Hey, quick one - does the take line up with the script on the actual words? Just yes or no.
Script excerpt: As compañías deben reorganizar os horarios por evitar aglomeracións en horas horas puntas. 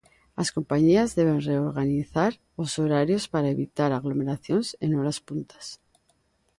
no